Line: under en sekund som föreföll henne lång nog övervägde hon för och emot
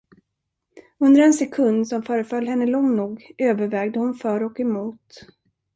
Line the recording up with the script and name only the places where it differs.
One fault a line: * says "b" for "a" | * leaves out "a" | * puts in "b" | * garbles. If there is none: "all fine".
all fine